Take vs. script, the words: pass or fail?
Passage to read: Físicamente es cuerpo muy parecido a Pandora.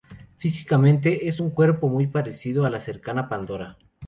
fail